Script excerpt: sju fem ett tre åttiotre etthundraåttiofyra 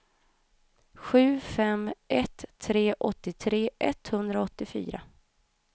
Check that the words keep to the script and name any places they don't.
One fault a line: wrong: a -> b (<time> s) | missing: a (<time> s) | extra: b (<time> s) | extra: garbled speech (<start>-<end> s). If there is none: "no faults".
no faults